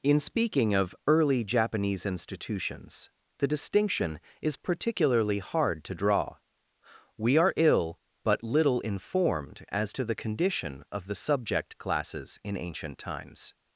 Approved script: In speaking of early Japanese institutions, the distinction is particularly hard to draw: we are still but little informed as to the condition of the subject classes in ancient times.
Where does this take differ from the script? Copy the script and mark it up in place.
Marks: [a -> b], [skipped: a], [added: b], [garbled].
In speaking of early Japanese institutions, the distinction is particularly hard to draw: we are [still -> ill] but little informed as to the condition of the subject classes in ancient times.